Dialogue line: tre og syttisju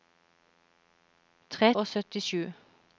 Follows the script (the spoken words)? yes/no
yes